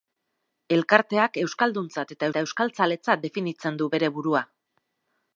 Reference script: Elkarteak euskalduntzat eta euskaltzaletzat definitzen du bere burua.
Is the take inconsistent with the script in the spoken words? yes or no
yes